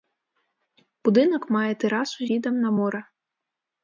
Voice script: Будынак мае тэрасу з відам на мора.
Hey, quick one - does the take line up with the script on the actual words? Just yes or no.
no